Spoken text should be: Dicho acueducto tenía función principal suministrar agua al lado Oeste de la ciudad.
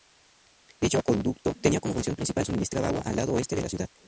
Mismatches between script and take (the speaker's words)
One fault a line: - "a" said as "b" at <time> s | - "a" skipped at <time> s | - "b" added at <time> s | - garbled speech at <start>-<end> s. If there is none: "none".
- "como" added at 1.8 s